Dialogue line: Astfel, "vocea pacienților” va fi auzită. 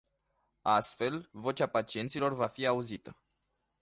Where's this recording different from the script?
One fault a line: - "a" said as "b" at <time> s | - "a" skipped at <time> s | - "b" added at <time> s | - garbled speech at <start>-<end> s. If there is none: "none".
none